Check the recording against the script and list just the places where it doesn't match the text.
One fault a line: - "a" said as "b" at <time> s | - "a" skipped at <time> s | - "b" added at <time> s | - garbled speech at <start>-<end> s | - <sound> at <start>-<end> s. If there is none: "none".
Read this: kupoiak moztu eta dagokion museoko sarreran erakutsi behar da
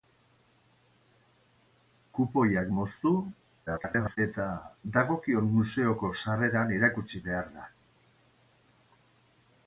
- garbled speech at 3.7-4.2 s